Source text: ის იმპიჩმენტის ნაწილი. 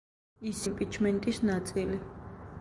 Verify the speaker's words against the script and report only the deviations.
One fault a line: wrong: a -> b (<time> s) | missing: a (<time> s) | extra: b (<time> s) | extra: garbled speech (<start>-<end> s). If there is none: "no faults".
no faults